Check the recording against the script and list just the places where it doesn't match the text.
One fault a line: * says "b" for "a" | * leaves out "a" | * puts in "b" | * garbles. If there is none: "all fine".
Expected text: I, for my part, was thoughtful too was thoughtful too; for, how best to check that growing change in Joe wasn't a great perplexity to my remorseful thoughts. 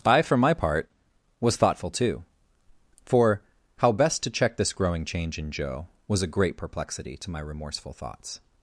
* leaves out "was thoughtful too"
* says "this" for "that"
* says "was" for "wasn't"